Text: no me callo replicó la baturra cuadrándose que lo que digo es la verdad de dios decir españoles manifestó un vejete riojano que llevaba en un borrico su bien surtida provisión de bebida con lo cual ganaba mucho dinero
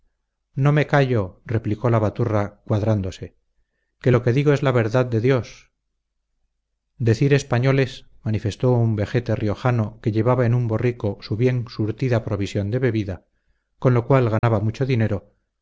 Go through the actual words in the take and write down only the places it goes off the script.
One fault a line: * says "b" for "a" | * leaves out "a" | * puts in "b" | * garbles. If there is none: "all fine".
all fine